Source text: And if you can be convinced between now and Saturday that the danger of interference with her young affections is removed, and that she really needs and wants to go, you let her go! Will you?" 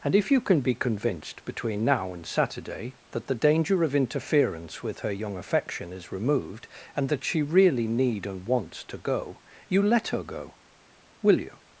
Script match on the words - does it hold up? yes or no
no